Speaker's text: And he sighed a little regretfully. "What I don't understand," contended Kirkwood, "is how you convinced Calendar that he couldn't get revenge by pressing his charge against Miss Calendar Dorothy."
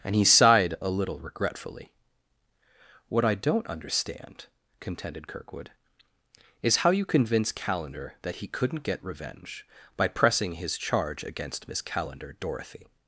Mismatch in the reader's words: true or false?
true